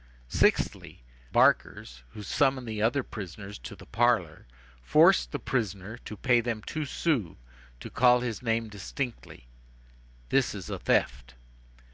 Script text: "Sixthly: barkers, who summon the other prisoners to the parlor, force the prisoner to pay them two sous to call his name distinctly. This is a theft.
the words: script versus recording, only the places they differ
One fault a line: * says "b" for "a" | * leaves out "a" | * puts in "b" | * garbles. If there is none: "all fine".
all fine